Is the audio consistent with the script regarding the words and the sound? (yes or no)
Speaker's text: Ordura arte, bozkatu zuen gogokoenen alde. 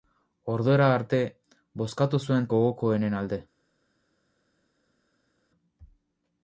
yes